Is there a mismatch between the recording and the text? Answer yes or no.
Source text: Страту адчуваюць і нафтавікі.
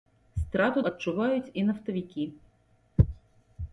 no